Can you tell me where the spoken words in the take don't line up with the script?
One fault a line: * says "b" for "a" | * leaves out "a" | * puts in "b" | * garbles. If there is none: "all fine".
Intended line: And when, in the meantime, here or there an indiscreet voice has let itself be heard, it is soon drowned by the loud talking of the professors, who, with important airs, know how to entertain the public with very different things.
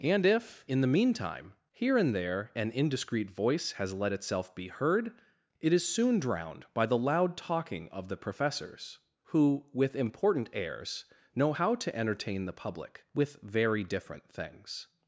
* says "if" for "when"
* says "and" for "or"